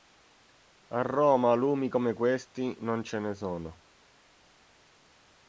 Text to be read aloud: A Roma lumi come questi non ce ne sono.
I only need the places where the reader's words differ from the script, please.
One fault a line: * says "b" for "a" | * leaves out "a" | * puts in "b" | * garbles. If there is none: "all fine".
all fine